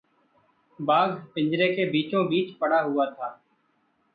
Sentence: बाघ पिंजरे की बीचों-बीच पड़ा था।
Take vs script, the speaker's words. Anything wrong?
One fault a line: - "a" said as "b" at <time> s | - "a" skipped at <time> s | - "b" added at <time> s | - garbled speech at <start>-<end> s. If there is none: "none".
- "की" said as "के" at 1.8 s
- "हुआ" added at 2.8 s